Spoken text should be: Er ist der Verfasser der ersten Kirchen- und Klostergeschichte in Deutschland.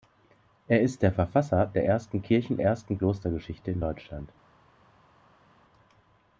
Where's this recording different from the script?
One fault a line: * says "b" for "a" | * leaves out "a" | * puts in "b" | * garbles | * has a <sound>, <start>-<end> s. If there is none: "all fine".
* says "ersten" for "und"